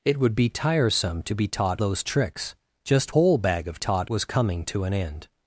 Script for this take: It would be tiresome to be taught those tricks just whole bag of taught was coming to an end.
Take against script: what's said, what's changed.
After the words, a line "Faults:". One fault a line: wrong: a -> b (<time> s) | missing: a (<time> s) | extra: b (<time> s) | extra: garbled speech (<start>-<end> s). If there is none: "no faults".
It would be tiresome to be taught those tricks just whole bag of taught was coming to an end.
Faults:
no faults